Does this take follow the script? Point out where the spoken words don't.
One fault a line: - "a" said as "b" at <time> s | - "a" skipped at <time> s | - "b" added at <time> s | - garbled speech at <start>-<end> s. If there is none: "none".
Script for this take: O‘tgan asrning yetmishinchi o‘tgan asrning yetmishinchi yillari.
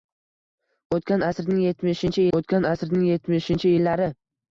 none